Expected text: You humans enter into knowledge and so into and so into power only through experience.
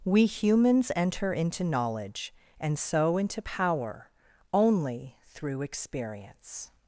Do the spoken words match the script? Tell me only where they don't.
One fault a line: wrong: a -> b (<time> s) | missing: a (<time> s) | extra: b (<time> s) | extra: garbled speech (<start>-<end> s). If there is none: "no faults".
wrong: You -> We (0.0 s)
missing: and so into (3.4 s)